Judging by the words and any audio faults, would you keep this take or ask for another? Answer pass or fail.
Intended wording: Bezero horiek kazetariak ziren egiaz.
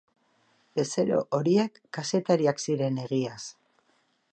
pass